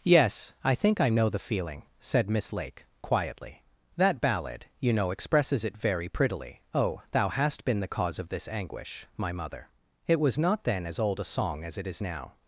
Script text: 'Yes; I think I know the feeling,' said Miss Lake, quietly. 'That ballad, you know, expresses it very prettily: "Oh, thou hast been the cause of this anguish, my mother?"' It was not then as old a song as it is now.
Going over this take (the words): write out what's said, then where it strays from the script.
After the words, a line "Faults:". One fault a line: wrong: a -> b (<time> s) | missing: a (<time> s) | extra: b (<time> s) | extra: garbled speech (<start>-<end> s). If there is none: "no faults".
'Yes; I think I know the feeling,' said Miss Lake, quietly. 'That ballad, you know, expresses it very prettily: "Oh, thou hast been the cause of this anguish, my mother?"' It was not then as old a song as it is now.
Faults:
no faults